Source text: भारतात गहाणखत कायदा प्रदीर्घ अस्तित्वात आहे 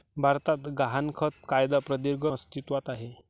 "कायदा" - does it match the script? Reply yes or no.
yes